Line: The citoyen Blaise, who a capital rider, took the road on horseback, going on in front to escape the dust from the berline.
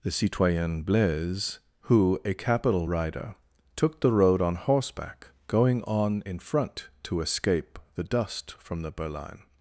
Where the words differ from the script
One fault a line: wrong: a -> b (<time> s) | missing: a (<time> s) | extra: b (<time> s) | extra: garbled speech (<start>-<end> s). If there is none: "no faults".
no faults